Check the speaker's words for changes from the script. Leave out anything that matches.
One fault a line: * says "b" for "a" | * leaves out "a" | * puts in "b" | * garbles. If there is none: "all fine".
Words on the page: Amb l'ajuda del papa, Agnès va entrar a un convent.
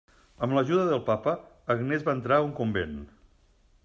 all fine